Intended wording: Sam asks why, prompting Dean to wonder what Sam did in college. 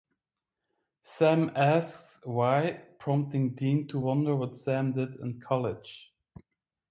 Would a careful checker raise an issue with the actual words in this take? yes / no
no